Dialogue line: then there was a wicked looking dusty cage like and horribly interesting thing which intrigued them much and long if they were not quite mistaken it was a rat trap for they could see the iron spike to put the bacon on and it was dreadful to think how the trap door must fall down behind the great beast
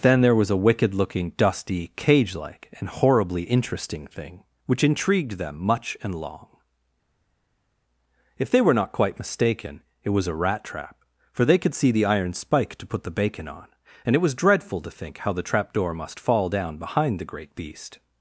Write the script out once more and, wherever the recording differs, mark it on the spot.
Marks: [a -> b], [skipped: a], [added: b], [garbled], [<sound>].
then there was a wicked looking dusty cage like and horribly interesting thing which intrigued them much and long if they were not quite mistaken it was a rat trap for they could see the iron spike to put the bacon on and it was dreadful to think how the trap door must fall down behind the great beast